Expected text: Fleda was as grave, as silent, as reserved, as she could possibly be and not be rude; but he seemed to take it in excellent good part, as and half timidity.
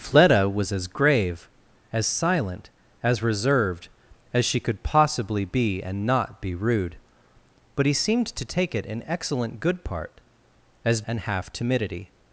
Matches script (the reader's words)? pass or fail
pass